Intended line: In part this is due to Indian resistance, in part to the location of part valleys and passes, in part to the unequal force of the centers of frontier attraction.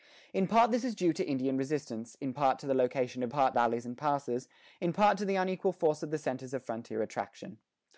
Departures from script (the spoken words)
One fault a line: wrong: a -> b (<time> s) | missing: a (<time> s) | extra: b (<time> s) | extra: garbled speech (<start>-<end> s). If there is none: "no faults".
no faults